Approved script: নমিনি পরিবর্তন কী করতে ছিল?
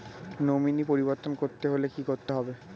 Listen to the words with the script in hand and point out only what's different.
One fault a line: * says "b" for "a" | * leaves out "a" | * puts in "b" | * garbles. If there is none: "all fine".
* puts in "করতে হলে"
* says "হবে" for "ছিল"